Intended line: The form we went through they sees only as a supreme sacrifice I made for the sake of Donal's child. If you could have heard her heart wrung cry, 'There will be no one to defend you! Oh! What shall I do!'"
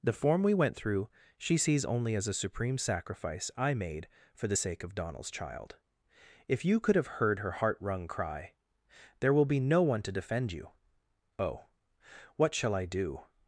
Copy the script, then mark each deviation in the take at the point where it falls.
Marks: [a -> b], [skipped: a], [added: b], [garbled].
The form we went through [they -> she] sees only as a supreme sacrifice I made for the sake of Donal's child. If you could have heard her heart wrung cry, 'There will be no one to defend you! Oh! What shall I do!'"